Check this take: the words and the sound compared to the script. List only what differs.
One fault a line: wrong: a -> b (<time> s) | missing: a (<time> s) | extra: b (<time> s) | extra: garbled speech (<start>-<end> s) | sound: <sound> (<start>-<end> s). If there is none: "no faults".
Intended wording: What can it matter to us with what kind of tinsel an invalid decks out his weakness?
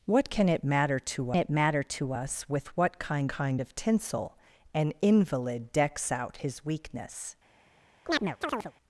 extra: it matter to (1.4 s)
extra: kind (3.3 s)
sound: chirp (8.1-8.7 s)